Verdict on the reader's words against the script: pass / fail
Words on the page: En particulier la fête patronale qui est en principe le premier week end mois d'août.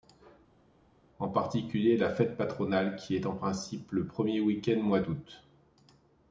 pass